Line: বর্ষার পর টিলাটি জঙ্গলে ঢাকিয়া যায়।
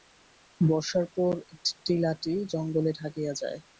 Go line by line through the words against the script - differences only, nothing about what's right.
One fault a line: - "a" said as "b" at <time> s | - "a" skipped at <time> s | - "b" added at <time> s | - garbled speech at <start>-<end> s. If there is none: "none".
none